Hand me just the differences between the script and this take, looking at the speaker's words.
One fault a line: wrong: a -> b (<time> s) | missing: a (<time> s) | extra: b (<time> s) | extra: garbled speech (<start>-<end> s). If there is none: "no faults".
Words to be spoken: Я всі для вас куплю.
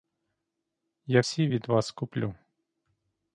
wrong: для -> від (1.5 s)